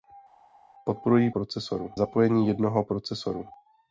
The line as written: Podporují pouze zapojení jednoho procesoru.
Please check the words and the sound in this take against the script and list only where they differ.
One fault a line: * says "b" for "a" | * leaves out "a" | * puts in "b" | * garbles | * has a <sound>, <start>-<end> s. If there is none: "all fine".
* says "procesoru" for "pouze"